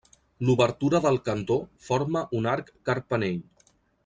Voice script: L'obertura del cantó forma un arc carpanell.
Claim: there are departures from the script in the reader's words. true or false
false